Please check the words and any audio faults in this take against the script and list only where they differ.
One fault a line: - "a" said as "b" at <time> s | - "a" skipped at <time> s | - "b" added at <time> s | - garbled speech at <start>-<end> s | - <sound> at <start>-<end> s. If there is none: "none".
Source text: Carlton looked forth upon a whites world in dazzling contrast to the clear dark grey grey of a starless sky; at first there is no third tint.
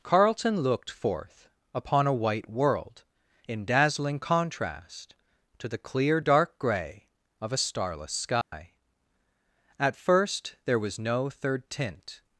- "whites" said as "white" at 2.1 s
- "grey" skipped at 7.1 s
- dropout at 8.4-8.5 s
- "is" said as "was" at 10.8 s